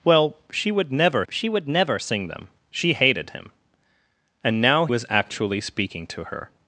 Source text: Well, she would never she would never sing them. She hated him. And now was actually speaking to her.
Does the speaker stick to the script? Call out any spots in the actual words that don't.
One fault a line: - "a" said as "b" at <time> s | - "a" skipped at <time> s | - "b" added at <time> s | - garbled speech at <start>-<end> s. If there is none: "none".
none